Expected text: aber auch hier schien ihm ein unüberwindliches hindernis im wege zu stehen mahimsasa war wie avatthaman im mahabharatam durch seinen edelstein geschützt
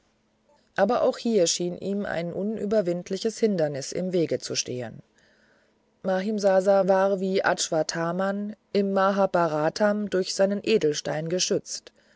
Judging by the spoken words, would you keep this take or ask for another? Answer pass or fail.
pass